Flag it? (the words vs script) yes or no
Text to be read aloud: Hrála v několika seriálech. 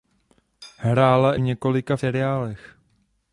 no